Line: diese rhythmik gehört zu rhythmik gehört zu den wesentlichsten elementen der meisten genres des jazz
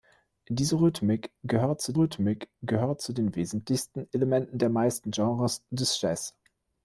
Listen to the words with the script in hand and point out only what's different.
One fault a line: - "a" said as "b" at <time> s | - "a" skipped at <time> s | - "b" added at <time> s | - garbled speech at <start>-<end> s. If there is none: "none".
none